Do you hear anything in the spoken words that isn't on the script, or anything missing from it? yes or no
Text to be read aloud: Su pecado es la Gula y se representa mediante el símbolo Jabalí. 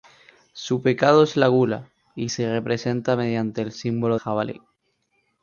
no